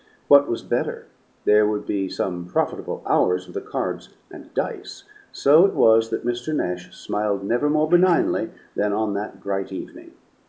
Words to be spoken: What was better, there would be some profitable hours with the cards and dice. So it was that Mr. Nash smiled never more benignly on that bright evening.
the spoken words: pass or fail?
fail